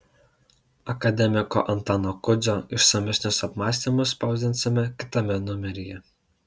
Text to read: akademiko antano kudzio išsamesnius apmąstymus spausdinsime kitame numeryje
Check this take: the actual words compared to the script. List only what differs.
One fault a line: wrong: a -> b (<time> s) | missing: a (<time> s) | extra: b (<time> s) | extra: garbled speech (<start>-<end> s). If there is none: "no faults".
no faults